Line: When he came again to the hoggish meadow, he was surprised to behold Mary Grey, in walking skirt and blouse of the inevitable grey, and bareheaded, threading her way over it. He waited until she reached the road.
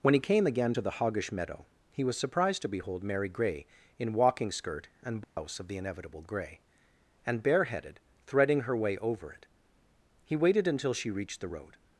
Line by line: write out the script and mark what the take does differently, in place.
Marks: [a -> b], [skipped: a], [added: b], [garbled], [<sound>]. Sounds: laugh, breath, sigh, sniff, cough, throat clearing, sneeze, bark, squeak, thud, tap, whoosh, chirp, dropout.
When he came again to the hoggish meadow, he was surprised to behold Mary Grey, in walking skirt and blouse [dropout] of the inevitable grey, and bareheaded, threading her way over it. He waited until she reached the road.